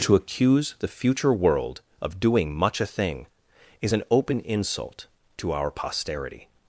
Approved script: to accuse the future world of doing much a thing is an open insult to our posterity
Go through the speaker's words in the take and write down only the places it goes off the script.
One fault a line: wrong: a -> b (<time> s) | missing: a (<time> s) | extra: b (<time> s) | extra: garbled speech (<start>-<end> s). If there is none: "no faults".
no faults